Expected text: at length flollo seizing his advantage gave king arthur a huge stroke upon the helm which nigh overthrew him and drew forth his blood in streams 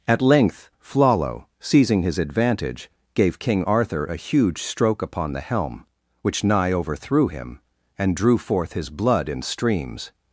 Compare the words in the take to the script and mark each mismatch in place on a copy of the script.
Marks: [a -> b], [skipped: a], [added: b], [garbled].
at length flollo seizing his advantage gave king arthur a huge stroke upon the helm which nigh overthrew him and drew forth his blood in streams